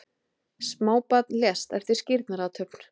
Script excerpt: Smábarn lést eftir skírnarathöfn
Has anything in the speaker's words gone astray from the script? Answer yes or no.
no